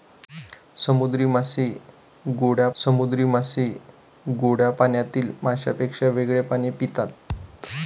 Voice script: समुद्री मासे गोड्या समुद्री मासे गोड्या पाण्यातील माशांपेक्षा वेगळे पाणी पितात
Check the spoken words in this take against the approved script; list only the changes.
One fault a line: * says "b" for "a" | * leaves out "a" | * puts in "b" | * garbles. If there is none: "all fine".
all fine